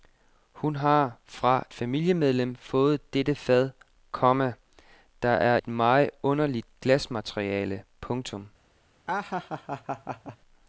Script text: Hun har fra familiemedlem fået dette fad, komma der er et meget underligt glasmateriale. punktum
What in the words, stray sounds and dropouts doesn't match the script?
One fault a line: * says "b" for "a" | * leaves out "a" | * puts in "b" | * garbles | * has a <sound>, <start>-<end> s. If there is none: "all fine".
* has a laugh, 9.1-10.4 s